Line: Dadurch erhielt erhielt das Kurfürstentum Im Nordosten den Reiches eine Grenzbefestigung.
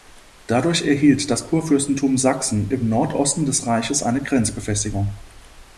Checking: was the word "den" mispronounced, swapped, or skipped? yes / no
yes